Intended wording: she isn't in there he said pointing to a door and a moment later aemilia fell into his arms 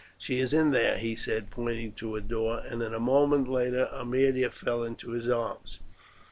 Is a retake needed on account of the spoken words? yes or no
yes